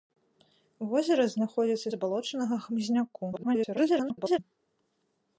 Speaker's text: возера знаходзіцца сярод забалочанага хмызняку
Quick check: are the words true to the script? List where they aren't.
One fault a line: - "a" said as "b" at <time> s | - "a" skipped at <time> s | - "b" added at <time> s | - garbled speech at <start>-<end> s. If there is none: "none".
- "сярод" skipped at 1.9 s
- garbled speech at 3.3-4.4 s